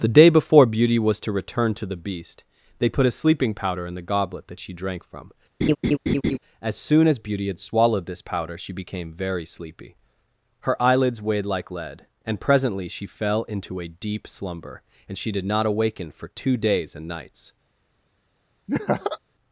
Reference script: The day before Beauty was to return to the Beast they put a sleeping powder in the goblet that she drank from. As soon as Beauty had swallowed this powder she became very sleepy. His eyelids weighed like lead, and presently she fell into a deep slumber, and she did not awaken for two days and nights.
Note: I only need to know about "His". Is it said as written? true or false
false